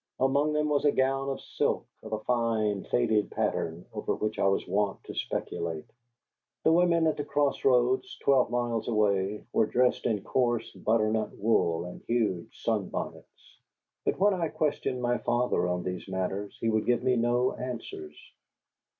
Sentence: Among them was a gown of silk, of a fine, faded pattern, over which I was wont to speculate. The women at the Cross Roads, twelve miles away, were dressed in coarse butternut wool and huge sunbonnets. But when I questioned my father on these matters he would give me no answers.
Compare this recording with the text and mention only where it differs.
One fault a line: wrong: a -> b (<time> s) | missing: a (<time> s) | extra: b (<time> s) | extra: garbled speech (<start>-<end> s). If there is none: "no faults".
no faults